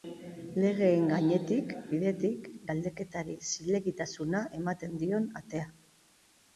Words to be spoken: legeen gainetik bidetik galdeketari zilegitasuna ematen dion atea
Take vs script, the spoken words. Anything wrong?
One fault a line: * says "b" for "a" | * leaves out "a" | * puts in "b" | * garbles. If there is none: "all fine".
all fine